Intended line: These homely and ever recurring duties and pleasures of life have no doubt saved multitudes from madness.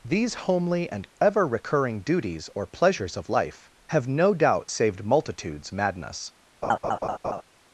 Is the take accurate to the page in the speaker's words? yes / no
no